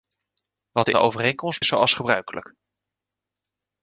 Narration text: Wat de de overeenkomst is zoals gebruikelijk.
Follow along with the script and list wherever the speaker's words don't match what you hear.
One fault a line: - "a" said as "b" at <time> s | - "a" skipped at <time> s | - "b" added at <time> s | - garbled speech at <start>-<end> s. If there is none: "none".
none